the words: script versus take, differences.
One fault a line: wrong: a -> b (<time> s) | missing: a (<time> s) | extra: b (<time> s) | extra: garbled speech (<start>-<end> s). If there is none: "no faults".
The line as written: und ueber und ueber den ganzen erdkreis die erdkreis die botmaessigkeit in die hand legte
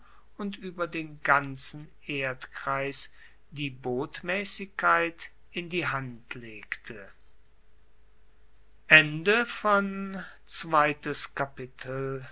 missing: und ueber (0.9 s)
missing: erdkreis die (3.7 s)